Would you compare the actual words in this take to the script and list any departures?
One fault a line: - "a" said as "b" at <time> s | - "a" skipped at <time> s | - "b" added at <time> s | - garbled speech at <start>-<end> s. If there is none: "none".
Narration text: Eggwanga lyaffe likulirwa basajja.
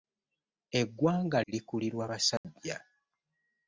- "lyaffe" skipped at 1.4 s